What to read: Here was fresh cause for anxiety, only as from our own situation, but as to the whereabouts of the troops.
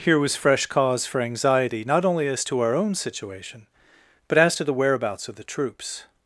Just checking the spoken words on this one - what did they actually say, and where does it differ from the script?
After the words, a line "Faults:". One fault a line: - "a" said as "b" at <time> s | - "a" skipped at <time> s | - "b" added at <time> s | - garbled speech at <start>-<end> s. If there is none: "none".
Here was fresh cause for anxiety, not only as to our own situation, but as to the whereabouts of the troops.
Faults:
- "not" added at 1.9 s
- "from" said as "to" at 2.4 s